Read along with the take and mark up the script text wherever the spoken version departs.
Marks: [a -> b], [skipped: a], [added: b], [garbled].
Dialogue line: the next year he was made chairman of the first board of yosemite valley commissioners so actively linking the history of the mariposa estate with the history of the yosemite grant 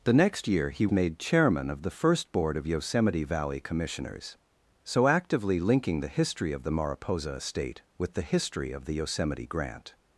the next year he [skipped: was] made chairman of the first board of yosemite valley commissioners so actively linking the history of the mariposa estate with the history of the yosemite grant